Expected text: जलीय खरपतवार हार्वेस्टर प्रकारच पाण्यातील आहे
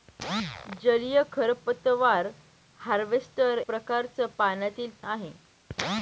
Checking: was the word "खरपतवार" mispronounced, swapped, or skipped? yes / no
no